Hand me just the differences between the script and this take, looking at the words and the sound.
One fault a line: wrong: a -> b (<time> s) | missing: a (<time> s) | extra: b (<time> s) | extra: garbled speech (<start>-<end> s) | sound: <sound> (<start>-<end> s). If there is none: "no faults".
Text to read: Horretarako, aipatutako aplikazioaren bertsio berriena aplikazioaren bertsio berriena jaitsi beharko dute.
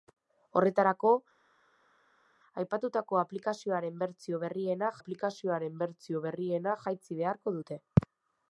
no faults